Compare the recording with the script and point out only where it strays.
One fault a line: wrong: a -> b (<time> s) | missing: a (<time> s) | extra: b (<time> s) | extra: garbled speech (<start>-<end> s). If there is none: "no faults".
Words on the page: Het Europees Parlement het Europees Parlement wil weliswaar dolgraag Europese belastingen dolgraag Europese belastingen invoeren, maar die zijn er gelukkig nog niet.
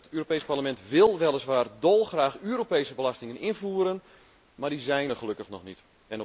missing: het Europees Parlement (0.8 s)
missing: dolgraag Europese belastingen (3.4 s)